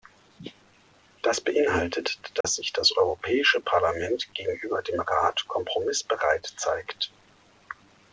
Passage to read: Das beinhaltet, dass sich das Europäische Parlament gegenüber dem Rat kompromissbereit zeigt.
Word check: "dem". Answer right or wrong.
right